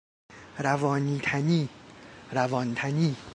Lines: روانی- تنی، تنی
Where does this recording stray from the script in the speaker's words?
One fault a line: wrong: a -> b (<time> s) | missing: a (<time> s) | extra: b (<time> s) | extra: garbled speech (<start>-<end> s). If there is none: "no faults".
extra: روان (2.3 s)